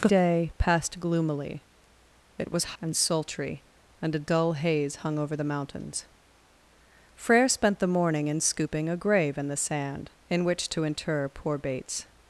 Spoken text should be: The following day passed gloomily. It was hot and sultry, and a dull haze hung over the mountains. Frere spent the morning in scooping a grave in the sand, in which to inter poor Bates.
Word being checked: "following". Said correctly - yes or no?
no